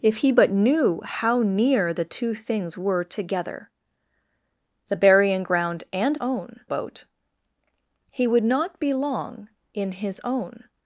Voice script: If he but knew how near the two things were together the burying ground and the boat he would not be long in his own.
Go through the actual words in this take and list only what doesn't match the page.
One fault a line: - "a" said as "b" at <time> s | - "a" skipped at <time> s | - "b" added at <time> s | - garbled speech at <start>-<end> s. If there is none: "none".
- "the" said as "own" at 6.2 s